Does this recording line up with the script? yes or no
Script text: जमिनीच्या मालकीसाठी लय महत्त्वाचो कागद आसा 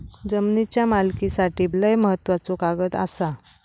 yes